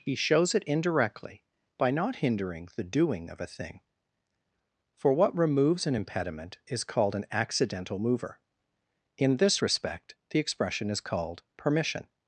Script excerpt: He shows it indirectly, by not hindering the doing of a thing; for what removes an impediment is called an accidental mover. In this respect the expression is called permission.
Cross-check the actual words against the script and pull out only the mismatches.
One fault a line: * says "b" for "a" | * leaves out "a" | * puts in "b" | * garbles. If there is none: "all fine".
all fine